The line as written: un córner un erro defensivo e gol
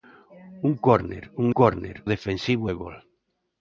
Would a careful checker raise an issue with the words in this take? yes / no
yes